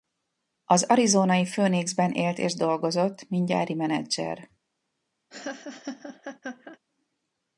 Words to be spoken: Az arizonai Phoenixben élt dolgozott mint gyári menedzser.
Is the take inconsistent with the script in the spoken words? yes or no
yes